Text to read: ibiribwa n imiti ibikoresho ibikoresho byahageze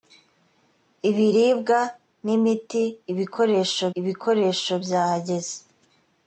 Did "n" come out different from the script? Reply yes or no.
no